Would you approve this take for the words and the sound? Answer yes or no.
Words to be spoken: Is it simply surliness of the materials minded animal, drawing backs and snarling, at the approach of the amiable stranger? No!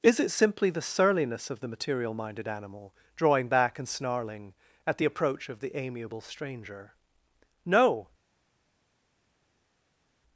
no